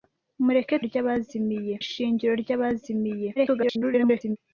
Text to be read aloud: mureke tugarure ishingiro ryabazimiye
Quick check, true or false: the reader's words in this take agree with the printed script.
false